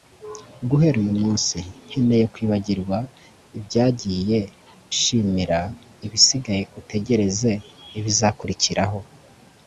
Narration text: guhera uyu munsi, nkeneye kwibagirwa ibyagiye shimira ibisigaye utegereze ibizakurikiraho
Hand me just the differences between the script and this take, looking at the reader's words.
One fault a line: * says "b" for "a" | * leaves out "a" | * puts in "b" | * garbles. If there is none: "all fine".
all fine